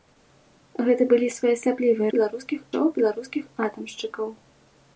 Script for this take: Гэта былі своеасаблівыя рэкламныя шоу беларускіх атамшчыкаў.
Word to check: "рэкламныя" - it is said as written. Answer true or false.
false